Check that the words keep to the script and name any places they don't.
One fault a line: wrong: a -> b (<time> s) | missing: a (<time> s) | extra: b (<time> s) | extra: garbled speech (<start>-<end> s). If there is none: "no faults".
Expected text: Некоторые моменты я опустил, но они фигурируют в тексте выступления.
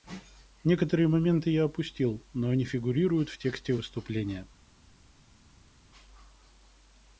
no faults